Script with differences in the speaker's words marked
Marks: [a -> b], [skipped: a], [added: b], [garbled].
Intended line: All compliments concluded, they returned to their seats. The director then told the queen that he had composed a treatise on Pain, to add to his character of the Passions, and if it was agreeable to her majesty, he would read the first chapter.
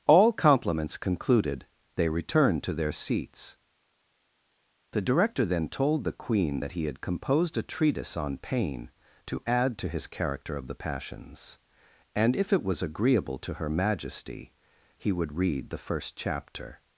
All compliments concluded, they returned to their seats. The director then told the queen that he had composed a treatise on Pain, to add to his character of the Passions, and if it was agreeable to her majesty, he would read the first chapter.